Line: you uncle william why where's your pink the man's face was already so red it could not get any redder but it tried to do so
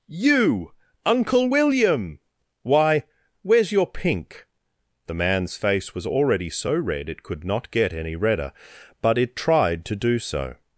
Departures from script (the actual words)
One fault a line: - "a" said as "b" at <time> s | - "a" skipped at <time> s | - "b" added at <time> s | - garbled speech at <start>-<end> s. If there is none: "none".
none